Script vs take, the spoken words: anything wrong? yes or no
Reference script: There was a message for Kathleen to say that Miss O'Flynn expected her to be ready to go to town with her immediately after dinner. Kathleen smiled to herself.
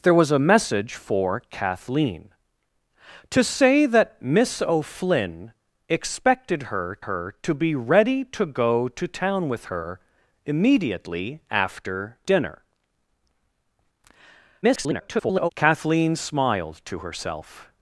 yes